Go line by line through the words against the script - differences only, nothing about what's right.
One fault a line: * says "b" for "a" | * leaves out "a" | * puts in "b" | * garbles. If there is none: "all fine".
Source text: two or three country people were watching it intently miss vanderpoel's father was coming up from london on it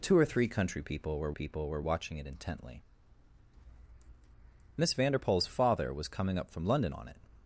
* puts in "people were"